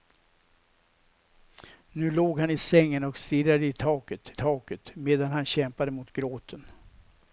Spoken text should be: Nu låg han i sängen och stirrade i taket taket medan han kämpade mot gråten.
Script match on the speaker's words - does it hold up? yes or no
yes